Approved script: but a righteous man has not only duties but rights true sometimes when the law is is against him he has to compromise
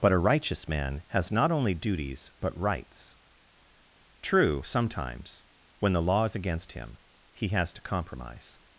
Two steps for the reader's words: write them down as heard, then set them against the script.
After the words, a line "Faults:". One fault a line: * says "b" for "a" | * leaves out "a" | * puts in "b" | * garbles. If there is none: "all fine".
but a righteous man has not only duties but rights true sometimes when the law is against him he has to compromise
Faults:
* leaves out "is"